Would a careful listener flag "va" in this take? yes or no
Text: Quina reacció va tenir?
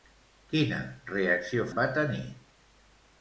no